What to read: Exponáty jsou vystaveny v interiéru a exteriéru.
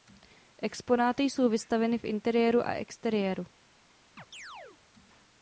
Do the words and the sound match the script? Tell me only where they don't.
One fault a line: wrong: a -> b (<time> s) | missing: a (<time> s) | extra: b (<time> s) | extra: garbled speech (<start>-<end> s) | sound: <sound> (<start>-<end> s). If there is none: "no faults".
sound: chirp (4.2-4.8 s)